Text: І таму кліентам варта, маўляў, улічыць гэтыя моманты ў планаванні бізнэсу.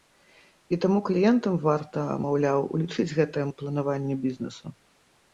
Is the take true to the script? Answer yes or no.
no